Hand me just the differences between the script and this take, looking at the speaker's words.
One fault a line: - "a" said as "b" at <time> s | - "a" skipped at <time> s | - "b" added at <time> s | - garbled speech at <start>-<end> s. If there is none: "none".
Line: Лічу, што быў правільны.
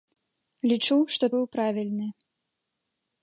none